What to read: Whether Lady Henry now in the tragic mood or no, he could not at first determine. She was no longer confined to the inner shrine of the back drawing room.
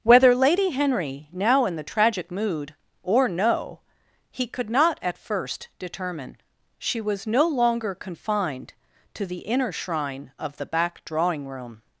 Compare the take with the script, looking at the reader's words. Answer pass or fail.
pass